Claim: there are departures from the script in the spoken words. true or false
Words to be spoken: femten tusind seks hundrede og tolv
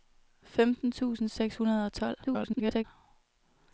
true